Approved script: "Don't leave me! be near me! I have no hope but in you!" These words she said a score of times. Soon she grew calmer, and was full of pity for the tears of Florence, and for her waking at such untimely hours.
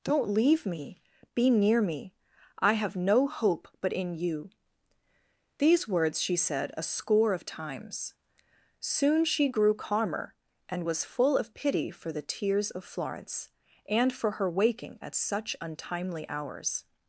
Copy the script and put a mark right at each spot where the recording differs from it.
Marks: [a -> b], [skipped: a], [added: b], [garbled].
"Don't leave me! be near me! I have no hope but in you!" These words she said a score of times. Soon she grew calmer, and was full of pity for the tears of Florence, and for her waking at such untimely hours.